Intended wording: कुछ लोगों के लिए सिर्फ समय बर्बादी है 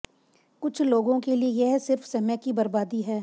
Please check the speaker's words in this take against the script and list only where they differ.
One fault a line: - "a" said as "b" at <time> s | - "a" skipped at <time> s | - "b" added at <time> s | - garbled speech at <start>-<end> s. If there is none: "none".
- "यह" added at 1.6 s
- "की" added at 2.4 s